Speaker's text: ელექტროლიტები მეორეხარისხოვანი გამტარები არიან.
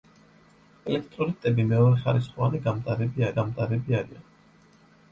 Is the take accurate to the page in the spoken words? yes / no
no